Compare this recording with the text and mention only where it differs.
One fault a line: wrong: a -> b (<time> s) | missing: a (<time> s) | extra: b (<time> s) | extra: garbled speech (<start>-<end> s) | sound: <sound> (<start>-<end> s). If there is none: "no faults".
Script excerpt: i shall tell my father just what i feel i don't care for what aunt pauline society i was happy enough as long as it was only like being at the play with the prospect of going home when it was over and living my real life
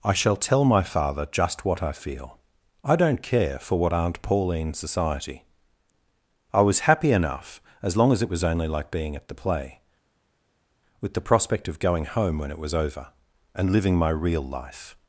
no faults